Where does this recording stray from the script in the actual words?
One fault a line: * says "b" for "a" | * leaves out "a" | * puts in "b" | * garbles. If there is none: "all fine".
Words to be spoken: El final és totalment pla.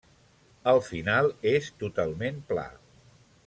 all fine